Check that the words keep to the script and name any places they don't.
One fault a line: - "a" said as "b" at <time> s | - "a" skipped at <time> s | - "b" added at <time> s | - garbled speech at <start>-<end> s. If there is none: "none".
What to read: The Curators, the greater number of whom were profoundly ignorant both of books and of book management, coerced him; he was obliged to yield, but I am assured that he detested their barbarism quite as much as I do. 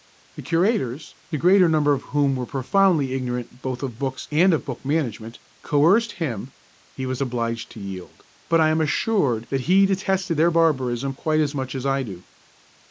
none